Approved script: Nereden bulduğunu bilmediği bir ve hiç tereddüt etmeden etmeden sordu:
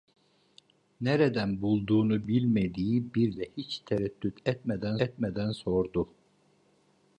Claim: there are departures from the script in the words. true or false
false